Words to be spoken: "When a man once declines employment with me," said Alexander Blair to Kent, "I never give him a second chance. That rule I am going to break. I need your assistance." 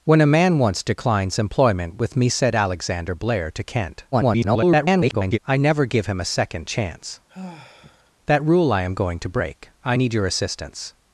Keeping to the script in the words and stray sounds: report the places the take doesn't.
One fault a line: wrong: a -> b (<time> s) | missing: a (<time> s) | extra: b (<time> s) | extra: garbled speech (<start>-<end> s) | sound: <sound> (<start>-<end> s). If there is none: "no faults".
extra: garbled speech (4.1-5.4 s)
sound: sigh (7.3-8.1 s)